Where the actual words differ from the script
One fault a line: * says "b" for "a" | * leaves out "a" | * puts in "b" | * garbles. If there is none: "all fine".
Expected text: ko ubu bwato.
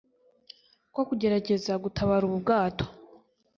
* puts in "kugerageza gutabara"